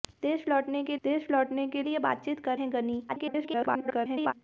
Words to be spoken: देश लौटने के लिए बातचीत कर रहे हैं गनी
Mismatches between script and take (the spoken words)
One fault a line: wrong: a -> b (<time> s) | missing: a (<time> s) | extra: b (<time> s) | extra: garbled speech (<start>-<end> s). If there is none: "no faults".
extra: देश लौटने के (1.0 s)
missing: रहे (2.6 s)
extra: garbled speech (3.1-4.3 s)